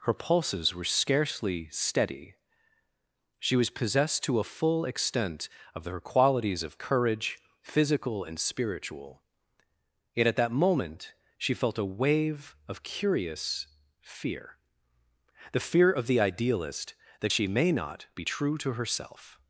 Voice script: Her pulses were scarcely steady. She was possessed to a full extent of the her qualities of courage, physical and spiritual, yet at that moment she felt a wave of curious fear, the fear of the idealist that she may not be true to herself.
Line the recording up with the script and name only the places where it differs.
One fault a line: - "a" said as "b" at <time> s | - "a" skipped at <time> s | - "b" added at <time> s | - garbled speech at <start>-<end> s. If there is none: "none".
- "the" skipped at 5.8 s